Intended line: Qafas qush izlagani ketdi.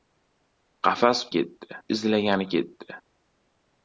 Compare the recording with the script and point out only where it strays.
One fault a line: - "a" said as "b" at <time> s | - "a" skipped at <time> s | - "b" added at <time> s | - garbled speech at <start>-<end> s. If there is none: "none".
- "qush" said as "ketdi" at 1.4 s